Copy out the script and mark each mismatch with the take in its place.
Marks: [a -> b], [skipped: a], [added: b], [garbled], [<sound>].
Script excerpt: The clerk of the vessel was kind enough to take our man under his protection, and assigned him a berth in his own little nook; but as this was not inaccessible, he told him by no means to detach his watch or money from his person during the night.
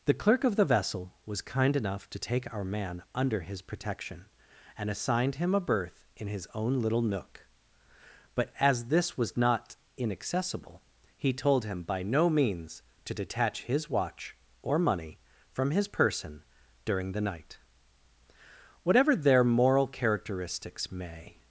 The clerk of the vessel was kind enough to take our man under his protection, and assigned him a berth in his own little nook; but as this was not inaccessible, he told him by no means to detach his watch or money from his person during the night. [added: Whatever their moral characteristics may]